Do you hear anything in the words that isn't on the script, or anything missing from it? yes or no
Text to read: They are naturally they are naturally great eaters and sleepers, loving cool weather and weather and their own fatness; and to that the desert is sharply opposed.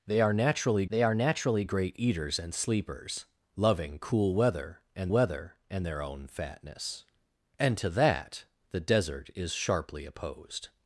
no